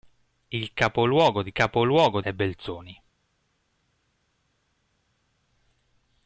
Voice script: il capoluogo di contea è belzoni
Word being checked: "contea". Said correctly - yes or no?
no